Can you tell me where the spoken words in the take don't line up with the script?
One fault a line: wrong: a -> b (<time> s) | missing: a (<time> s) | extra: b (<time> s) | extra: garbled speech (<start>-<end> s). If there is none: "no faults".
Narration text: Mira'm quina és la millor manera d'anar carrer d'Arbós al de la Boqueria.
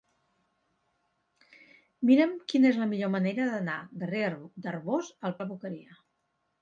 no faults